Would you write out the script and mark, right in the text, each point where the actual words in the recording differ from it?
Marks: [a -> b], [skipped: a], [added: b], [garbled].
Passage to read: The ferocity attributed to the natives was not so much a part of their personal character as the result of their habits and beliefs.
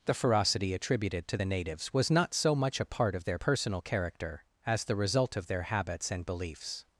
The ferocity attributed to the natives was not so much a part of their personal character as the result of their habits and beliefs.